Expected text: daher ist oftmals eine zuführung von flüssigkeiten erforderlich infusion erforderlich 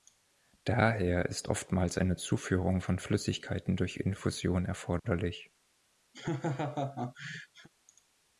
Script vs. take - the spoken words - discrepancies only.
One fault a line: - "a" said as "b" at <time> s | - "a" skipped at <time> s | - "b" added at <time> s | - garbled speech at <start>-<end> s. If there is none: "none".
- "erforderlich" said as "durch" at 3.8 s